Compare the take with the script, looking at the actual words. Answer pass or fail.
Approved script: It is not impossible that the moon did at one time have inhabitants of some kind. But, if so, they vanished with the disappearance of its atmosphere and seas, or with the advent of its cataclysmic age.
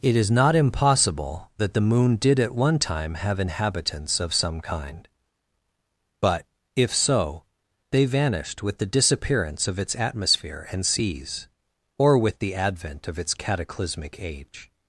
pass